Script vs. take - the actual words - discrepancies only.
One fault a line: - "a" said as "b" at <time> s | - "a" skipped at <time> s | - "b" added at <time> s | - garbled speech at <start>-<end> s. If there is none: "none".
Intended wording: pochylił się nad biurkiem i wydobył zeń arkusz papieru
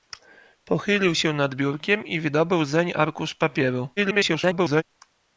- garbled speech at 4.0-4.8 s